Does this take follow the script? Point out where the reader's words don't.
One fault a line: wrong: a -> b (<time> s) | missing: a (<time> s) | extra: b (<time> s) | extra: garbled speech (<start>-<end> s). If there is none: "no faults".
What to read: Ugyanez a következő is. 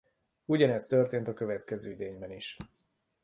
extra: történt (0.8 s)
extra: idényben (1.9 s)